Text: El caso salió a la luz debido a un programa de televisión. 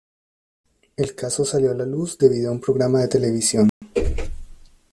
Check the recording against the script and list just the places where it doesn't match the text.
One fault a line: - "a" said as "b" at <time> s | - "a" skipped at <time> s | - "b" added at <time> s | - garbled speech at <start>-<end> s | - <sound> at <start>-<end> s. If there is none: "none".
- dropout at 3.7-3.8 s